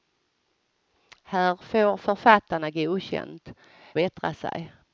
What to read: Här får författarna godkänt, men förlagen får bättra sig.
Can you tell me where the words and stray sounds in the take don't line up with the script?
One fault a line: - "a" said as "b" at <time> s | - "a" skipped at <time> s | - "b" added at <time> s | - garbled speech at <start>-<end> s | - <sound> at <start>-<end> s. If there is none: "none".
- "men förlagen får" skipped at 3.5 s